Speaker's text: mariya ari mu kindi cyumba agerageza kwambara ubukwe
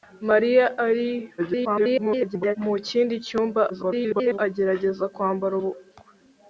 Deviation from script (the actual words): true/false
true